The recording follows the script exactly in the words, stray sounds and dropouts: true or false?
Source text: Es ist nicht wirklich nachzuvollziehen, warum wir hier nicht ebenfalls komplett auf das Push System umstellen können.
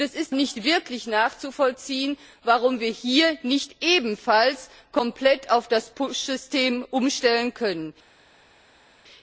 true